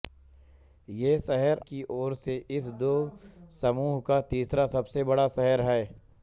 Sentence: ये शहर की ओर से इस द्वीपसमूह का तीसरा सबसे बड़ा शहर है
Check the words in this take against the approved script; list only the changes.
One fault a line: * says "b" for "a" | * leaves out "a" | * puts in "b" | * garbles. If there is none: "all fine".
all fine